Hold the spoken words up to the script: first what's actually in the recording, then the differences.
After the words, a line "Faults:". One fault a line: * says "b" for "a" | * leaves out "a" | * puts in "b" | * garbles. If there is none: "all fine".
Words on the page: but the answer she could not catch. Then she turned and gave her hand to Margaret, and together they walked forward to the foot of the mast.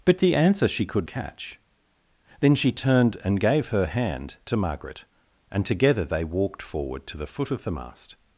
but the answer she could catch. Then she turned and gave her hand to Margaret, and together they walked forward to the foot of the mast.
Faults:
* leaves out "not"